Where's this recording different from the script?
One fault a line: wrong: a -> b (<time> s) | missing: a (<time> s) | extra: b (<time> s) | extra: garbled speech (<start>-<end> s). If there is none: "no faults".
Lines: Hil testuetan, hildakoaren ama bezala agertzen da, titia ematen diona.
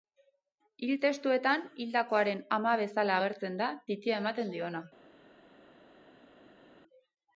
no faults